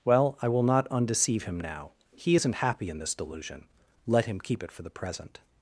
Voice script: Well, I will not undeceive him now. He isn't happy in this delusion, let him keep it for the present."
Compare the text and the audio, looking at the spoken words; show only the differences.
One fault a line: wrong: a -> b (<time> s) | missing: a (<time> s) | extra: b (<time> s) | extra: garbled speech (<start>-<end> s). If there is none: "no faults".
no faults